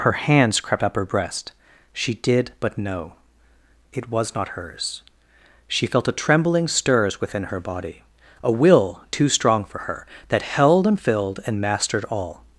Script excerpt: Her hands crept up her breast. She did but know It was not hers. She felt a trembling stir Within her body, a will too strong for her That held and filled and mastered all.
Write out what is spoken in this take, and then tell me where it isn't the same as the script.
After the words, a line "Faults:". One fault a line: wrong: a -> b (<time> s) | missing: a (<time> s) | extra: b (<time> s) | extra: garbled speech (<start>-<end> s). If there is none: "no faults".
Her hands crept up her breast. She did but know It was not hers. She felt a trembling stirs Within her body, a will too strong for her That held and filled and mastered all.
Faults:
wrong: stir -> stirs (6.7 s)